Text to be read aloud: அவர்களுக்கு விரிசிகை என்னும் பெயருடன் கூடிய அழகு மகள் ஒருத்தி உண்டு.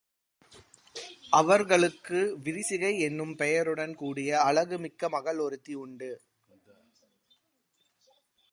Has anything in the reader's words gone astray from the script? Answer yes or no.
yes